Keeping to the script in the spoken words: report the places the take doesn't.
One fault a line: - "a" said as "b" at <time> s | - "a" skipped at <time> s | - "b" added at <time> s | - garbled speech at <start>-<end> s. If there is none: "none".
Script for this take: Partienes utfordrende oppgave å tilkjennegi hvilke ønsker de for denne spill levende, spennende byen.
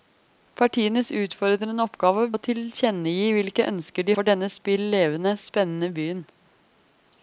none